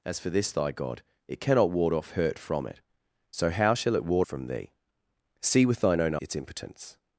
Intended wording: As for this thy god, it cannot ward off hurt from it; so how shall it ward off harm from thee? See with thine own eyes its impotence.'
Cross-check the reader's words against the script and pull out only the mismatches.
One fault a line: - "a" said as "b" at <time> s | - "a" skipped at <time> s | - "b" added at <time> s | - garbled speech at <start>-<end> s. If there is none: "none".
- "off harm" skipped at 4.3 s
- "eyes" skipped at 6.2 s